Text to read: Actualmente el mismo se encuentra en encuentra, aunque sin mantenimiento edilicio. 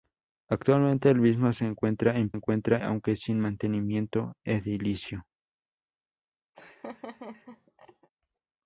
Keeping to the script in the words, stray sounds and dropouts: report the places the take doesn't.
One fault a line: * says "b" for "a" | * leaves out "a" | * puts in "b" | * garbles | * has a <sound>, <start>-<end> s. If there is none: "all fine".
* has a laugh, 6.5-8.1 s